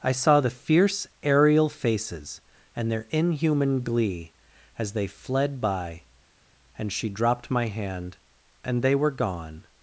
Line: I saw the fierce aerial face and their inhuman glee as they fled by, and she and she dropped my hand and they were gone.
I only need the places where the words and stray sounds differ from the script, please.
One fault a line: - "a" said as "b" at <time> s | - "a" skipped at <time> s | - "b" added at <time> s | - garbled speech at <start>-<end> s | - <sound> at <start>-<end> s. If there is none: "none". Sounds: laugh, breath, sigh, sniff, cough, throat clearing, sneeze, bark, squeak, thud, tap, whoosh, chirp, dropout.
- "face" said as "faces" at 1.7 s
- "and she" skipped at 7.1 s